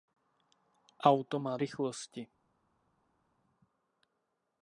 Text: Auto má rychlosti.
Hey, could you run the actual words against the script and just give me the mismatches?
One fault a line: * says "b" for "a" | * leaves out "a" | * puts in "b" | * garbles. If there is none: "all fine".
all fine